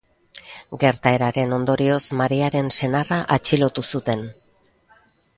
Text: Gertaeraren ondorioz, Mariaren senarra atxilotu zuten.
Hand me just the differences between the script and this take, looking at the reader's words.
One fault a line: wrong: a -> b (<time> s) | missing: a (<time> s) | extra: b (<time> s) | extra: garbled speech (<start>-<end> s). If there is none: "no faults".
no faults